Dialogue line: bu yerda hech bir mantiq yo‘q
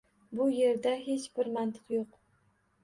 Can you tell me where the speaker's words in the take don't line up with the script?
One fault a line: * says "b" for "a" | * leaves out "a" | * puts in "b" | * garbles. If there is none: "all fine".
all fine